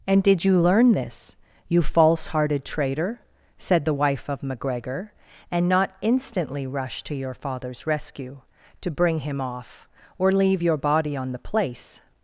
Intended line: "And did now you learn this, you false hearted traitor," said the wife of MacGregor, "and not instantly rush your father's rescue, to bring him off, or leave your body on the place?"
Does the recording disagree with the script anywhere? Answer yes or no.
yes